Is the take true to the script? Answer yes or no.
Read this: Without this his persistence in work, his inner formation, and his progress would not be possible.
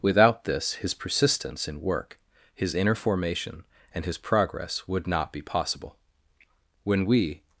no